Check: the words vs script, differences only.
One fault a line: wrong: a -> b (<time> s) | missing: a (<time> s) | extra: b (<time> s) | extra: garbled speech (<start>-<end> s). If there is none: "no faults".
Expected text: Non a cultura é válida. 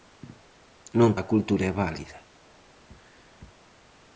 no faults